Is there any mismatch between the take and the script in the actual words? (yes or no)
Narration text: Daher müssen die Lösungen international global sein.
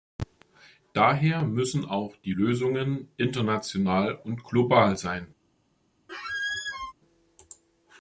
yes